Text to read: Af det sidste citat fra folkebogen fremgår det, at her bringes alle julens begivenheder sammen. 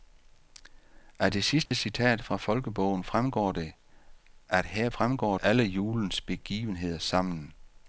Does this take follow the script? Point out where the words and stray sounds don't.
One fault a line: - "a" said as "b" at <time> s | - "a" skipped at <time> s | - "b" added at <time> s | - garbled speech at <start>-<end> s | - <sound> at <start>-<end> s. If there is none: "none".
- dropout at 1.7-1.7 s
- "bringes" said as "fremgår" at 4.9 s